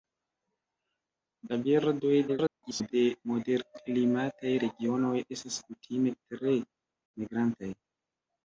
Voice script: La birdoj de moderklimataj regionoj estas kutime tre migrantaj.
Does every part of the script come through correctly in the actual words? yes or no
no